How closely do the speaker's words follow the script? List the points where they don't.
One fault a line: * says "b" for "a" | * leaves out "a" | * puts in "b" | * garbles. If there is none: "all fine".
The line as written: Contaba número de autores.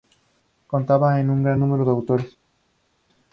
* puts in "con un gran"